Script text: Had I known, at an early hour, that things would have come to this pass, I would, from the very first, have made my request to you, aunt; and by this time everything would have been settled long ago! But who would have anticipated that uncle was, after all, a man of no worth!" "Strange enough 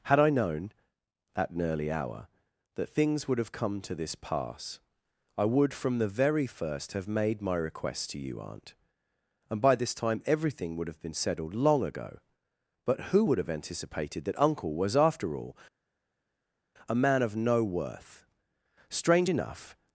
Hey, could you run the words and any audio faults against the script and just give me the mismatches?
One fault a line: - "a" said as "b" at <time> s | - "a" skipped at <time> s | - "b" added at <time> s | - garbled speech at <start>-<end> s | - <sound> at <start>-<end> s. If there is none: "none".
none